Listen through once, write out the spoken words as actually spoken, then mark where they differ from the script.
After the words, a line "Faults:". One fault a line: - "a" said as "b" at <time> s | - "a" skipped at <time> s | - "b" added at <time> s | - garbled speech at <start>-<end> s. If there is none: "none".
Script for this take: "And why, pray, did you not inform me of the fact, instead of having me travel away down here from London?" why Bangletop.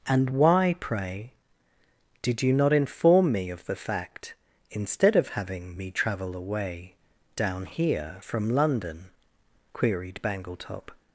"And why, pray, did you not inform me of the fact, instead of having me travel away down here from London?" queried Bangletop.
Faults:
- "why" said as "queried" at 9.7 s